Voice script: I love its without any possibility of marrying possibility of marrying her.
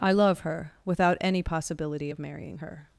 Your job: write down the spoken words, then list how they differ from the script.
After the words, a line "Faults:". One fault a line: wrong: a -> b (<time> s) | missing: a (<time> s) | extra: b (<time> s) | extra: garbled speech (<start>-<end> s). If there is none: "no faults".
I love her without any possibility of marrying her.
Faults:
wrong: its -> her (0.4 s)
missing: possibility of marrying (2.6 s)